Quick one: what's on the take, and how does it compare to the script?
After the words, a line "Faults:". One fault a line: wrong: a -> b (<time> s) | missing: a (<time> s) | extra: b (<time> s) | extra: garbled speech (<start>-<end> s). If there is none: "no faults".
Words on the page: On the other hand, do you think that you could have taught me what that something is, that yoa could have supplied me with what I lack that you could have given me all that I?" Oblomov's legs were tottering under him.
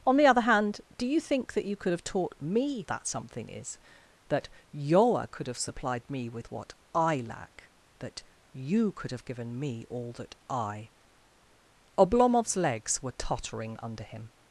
On the other hand, do you think that you could have taught me that something is, that yoa could have supplied me with what I lack that you could have given me all that I?" Oblomov's legs were tottering under him.
Faults:
missing: what (2.9 s)